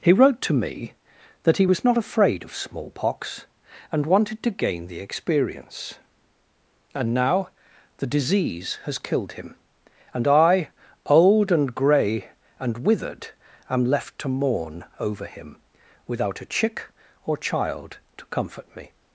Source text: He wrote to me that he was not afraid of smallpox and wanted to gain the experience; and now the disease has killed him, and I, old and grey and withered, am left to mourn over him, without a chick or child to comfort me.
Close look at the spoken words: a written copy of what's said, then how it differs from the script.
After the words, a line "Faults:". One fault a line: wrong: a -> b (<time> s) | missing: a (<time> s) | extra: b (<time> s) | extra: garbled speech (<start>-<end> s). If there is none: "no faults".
He wrote to me that he was not afraid of smallpox and wanted to gain the experience; and now the disease has killed him, and I, old and grey and withered, am left to mourn over him, without a chick or child to comfort me.
Faults:
no faults